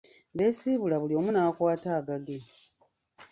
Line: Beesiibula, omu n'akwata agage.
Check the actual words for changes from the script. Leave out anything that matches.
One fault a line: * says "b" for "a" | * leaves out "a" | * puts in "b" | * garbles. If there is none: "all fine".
* puts in "buli"